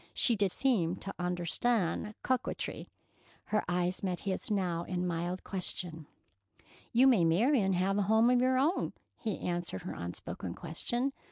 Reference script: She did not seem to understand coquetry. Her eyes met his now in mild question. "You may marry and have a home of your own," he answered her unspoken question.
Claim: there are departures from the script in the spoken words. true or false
true